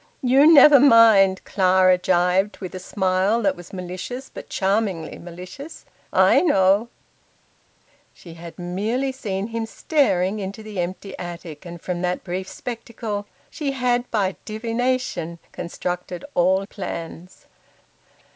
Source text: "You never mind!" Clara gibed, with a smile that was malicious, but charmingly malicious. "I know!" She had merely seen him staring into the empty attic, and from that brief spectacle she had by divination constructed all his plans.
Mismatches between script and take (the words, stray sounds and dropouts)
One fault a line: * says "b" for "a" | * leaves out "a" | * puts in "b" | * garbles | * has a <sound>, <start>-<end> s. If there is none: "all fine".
* leaves out "his"